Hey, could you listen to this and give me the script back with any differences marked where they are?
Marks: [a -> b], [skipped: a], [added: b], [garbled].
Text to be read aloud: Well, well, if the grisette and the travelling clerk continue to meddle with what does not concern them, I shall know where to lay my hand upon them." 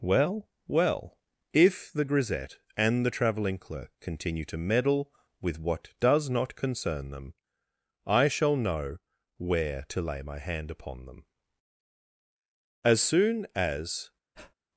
Well, well, if the grisette and the travelling clerk continue to meddle with what does not concern them, I shall know where to lay my hand upon them." [added: As soon as]